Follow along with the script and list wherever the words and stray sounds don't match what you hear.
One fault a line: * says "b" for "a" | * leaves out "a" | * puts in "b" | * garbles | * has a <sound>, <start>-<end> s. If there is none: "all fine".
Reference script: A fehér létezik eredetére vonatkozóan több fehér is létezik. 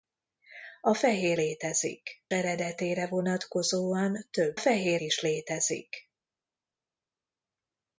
all fine